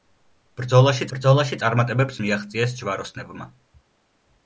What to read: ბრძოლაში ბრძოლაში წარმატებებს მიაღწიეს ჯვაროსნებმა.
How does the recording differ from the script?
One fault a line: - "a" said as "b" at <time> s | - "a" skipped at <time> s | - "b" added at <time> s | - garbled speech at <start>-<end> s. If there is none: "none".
none